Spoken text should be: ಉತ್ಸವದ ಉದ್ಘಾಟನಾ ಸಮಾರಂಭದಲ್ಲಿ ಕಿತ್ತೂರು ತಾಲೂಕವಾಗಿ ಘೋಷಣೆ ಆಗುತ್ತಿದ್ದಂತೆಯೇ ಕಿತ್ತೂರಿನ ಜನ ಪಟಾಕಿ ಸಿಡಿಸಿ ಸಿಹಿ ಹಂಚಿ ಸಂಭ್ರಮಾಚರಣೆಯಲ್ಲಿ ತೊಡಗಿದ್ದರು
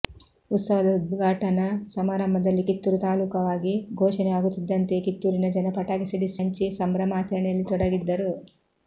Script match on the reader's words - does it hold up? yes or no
no